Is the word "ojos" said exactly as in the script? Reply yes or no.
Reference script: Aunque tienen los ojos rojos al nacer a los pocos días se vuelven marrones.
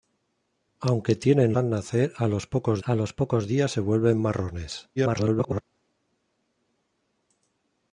no